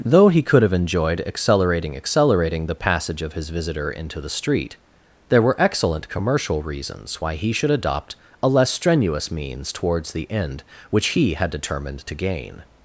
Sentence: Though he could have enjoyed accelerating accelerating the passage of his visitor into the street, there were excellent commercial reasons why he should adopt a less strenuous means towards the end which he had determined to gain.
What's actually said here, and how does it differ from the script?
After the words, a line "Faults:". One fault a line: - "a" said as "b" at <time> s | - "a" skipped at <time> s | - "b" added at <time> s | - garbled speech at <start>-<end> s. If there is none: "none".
Though he could have enjoyed accelerating accelerating the passage of his visitor into the street, there were excellent commercial reasons why he should adopt a less strenuous means towards the end which he had determined to gain.
Faults:
none